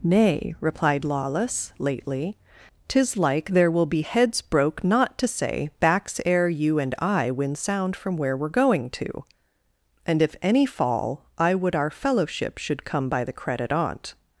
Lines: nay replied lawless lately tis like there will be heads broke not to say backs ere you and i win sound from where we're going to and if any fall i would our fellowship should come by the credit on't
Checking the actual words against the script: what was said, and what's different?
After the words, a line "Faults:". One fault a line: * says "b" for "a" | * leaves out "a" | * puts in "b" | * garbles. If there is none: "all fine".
nay replied lawless lately tis like there will be heads broke not to say backs ere you and i win sound from where we're going to and if any fall i would our fellowship should come by the credit on't
Faults:
all fine